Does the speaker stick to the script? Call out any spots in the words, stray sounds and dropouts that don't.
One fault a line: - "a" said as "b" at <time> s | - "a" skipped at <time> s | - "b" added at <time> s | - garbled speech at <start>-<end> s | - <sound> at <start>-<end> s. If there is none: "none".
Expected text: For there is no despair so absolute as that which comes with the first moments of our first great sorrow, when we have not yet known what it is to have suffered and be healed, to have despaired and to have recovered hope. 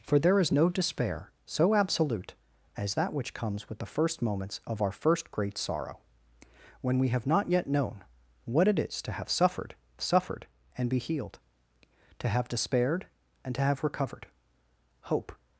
- "suffered" added at 10.0 s